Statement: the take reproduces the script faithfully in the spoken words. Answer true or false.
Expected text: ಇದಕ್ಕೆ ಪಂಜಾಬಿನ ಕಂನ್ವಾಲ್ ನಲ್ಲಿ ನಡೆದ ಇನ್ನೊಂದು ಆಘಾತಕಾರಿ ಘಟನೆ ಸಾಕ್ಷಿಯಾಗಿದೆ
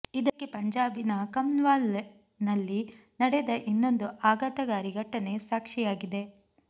true